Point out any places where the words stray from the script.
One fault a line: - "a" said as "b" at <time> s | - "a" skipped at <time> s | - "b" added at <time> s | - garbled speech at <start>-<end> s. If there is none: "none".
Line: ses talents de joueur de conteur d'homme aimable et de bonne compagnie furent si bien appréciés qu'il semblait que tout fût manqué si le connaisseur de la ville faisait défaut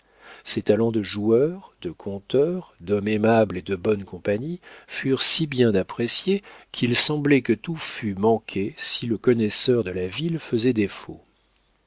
none